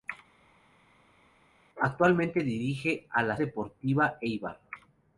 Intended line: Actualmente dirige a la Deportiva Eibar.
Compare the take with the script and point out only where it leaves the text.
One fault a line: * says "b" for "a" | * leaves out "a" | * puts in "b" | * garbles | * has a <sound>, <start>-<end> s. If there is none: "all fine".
all fine